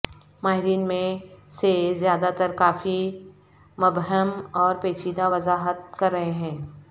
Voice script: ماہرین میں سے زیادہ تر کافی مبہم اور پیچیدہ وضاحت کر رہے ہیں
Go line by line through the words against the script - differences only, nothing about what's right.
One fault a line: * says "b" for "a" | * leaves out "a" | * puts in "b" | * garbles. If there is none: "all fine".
all fine